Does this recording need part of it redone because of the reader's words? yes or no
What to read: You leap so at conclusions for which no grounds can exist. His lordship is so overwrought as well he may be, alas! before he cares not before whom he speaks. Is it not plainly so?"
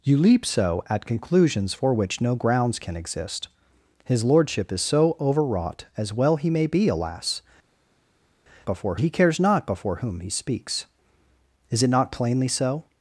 no